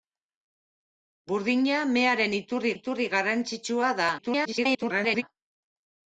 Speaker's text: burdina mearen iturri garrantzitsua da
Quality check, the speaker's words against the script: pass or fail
fail